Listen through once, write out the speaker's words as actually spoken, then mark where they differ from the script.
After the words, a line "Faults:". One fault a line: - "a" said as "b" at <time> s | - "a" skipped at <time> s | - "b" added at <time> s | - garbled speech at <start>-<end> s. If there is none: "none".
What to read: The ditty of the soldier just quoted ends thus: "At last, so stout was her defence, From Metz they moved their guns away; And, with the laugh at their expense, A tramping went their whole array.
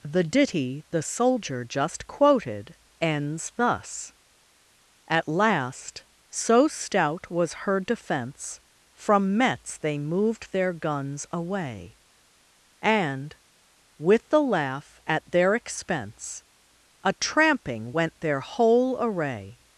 The ditty the soldier just quoted ends thus: "At last, so stout was her defence, From Metz they moved their guns away; And, with the laugh at their expense, A tramping went their whole array.
Faults:
- "of" skipped at 0.8 s